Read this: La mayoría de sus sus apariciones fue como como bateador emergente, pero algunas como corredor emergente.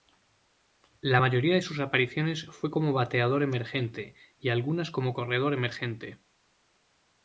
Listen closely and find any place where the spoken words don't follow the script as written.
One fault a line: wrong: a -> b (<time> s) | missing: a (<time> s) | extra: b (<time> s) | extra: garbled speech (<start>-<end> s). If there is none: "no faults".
missing: sus (1.8 s)
missing: como (2.9 s)
wrong: pero -> y (4.4 s)